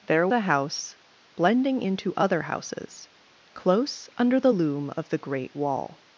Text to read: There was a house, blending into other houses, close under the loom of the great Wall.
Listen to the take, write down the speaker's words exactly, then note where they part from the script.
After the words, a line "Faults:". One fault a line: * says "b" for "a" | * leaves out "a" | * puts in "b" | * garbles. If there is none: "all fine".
There a house, blending into other houses, close under the loom of the great Wall.
Faults:
* leaves out "was"